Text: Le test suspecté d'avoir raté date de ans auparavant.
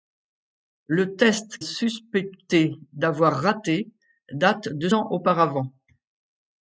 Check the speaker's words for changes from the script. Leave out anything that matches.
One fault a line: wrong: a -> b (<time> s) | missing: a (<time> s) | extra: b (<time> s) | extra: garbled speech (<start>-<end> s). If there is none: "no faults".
no faults